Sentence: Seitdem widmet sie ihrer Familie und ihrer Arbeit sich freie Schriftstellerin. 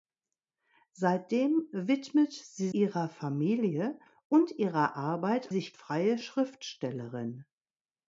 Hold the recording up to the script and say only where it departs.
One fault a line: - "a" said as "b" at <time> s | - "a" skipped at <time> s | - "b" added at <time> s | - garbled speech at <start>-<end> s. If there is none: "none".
none